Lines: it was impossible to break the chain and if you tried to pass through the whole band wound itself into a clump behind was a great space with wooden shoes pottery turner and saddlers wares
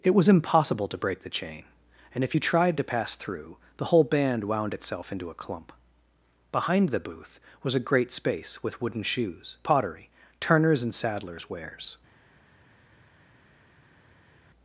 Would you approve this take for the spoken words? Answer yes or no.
no